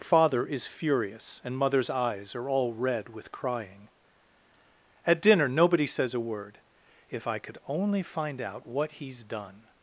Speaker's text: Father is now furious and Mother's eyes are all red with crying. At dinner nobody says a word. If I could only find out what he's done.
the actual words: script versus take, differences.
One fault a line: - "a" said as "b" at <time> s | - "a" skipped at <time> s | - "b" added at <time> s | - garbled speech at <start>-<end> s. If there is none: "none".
- "now" skipped at 0.7 s